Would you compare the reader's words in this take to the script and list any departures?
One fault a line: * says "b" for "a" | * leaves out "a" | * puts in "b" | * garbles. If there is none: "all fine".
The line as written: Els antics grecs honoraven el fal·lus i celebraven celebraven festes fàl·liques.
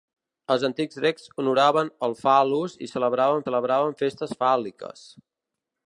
all fine